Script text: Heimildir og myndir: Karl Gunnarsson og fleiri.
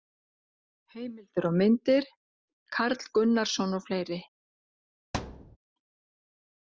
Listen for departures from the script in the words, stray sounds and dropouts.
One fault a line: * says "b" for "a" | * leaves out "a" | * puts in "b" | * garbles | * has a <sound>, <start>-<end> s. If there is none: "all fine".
* has a thud, 5.1-5.6 s